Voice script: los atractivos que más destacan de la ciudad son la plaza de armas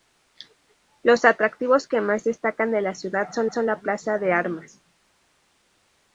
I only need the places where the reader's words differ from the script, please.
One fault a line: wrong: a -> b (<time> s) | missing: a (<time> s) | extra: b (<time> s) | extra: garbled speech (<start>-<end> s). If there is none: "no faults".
extra: son (3.5 s)